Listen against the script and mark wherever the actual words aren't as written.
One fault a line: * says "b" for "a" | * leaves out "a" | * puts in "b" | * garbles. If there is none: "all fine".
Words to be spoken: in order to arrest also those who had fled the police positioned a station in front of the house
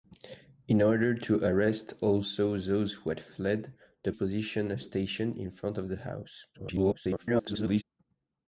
* leaves out "police"
* garbles